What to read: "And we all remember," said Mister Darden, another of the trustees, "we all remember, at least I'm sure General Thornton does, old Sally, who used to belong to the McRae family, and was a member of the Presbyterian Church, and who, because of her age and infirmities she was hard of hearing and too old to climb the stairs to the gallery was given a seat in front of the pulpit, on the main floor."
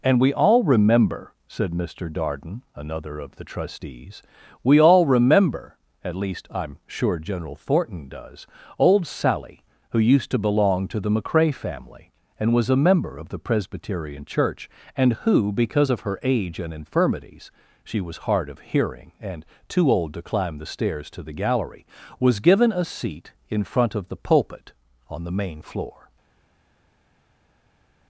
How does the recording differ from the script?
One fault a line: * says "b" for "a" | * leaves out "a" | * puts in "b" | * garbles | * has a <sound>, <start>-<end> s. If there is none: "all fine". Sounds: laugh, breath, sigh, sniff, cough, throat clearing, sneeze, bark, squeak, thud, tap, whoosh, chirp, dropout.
all fine